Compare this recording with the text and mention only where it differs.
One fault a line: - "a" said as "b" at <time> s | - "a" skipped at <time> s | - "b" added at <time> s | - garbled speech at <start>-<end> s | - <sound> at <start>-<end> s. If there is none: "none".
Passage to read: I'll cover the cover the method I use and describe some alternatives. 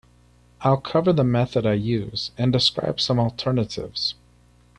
- "cover the" skipped at 1.2 s